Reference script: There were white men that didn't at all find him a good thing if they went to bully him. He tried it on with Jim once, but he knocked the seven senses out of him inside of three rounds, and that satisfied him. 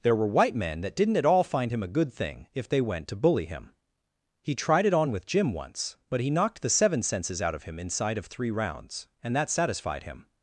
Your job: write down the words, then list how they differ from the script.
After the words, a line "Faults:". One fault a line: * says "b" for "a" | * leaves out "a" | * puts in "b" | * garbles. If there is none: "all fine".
There were white men that didn't at all find him a good thing if they went to bully him. He tried it on with Jim once, but he knocked the seven senses out of him inside of three rounds, and that satisfied him.
Faults:
all fine